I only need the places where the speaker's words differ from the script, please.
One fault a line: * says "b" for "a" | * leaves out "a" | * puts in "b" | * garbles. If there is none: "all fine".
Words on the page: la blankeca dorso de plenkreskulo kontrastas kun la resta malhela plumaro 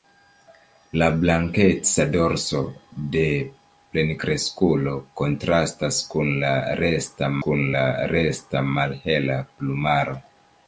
* puts in "kun la resta"